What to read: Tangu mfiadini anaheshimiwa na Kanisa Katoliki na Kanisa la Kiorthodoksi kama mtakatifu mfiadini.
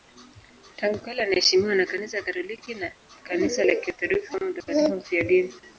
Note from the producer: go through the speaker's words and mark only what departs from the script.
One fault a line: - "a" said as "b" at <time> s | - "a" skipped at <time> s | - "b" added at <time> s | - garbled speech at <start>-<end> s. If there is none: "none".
- "mfiadini" said as "kale" at 1.0 s